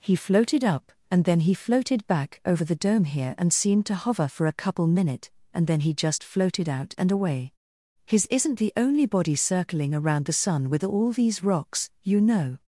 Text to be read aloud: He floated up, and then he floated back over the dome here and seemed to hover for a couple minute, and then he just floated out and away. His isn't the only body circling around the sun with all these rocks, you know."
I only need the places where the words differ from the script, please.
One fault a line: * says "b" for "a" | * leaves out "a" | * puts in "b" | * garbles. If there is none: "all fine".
all fine